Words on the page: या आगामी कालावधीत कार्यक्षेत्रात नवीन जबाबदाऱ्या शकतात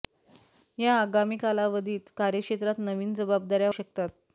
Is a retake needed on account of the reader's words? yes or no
no